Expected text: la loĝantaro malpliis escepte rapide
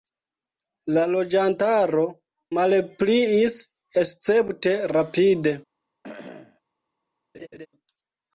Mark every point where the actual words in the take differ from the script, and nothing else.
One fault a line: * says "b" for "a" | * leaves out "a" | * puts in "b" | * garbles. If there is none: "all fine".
all fine